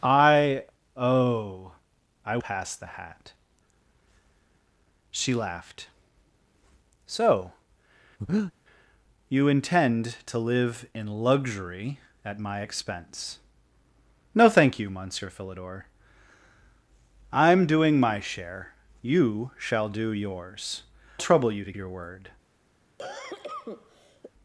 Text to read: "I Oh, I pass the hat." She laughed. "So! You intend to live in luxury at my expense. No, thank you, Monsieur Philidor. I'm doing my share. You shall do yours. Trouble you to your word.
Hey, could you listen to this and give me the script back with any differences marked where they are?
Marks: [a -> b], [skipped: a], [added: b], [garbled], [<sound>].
"I Oh, I pass the hat." She laughed. "So! [breath] You intend to live in luxury at my expense. No, thank you, Monsieur Philidor. I'm doing my share. You shall do yours. Trouble you to your word. [cough]